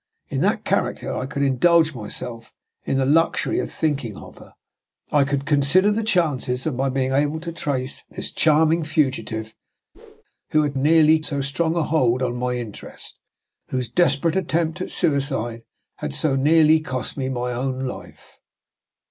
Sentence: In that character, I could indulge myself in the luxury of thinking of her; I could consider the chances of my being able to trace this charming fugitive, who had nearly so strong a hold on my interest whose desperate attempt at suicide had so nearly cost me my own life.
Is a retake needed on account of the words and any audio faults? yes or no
yes